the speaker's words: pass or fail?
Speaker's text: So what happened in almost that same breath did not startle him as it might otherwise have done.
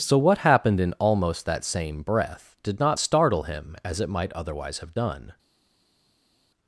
pass